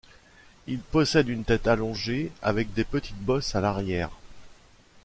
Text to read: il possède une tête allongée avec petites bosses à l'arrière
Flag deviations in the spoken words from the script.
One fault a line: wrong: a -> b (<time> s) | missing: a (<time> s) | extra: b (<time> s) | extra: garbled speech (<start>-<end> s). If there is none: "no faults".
extra: des (2.7 s)